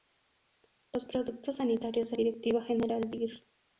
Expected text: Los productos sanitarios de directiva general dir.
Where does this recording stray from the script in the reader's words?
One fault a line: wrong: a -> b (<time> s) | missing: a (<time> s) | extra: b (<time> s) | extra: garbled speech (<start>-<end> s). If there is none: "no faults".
no faults